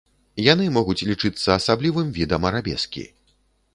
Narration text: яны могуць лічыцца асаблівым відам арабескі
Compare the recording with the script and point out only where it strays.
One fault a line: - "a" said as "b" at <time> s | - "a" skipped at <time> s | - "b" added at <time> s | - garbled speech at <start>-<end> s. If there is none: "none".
none